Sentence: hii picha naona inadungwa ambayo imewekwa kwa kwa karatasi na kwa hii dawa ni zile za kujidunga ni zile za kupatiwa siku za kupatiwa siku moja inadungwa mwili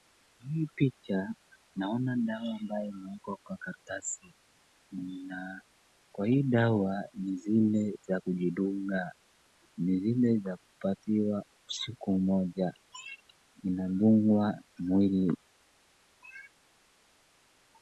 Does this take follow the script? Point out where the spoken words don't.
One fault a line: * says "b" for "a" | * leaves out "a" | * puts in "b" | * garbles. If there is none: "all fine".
* says "dawa" for "inadungwa"
* leaves out "kwa"
* leaves out "za kupatiwa siku"